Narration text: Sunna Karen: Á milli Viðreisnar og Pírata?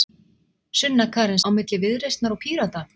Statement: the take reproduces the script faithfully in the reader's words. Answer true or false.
true